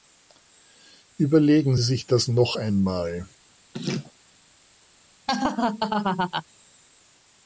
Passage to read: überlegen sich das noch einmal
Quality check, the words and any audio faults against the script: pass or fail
fail